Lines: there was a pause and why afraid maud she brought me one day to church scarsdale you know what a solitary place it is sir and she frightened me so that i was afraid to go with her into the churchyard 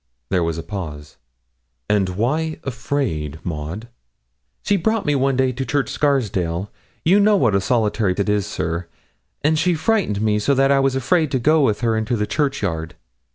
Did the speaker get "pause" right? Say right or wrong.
right